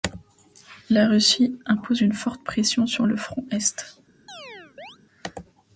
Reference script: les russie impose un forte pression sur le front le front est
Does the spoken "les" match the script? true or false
false